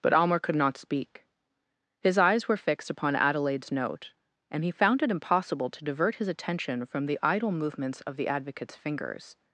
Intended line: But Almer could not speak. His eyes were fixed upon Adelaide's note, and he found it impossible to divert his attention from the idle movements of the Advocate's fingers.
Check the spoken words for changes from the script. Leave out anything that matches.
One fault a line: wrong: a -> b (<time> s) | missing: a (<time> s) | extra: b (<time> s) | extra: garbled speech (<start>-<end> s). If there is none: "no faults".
no faults